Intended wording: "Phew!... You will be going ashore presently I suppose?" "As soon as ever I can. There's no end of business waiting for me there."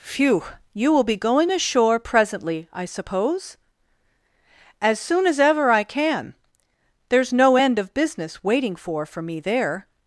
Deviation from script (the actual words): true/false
true